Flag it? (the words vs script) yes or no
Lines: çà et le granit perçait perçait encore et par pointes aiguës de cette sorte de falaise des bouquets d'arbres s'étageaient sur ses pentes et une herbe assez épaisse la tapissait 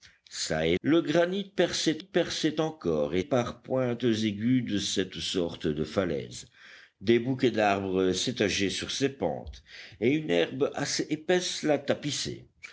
no